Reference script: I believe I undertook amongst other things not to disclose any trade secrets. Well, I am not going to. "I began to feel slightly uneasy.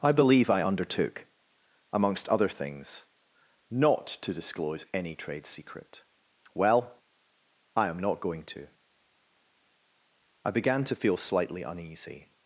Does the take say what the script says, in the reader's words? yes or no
no